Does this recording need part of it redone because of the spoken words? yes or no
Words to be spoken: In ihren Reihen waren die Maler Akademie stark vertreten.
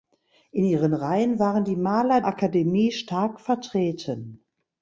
no